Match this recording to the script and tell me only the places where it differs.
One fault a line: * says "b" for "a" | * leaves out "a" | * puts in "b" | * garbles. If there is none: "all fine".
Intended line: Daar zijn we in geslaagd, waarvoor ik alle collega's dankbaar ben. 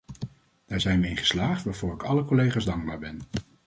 all fine